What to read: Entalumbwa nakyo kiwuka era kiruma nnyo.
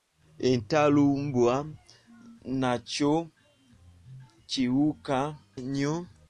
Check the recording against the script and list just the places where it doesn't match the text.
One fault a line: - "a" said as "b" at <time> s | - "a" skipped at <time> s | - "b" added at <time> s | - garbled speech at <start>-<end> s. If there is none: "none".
- "era kiruma" skipped at 5.2 s